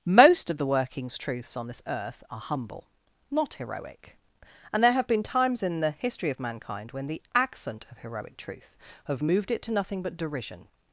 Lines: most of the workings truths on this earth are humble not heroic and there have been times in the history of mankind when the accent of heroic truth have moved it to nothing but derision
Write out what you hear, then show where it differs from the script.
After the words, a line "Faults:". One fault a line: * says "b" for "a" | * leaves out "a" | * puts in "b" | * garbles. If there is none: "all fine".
most of the workings truths on this earth are humble not heroic and there have been times in the history of mankind when the accent of heroic truth have moved it to nothing but derision
Faults:
all fine